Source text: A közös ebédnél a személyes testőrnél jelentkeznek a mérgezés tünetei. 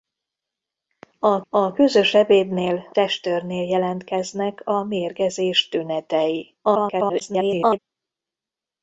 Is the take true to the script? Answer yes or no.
no